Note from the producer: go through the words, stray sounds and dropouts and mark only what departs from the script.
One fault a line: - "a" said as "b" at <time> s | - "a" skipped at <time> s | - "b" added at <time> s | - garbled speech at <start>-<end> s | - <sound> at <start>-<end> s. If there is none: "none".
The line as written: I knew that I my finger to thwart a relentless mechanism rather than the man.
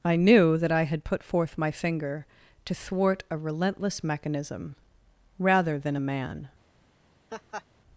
- "had put forth" added at 0.8 s
- "the" said as "a" at 6.0 s
- laugh at 7.3-7.6 s